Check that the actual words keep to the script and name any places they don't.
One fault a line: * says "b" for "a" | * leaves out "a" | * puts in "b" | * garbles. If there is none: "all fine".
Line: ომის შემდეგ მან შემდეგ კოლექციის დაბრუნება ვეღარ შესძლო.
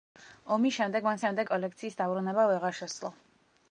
all fine